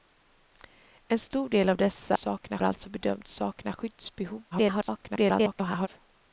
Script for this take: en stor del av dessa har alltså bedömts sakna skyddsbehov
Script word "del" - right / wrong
right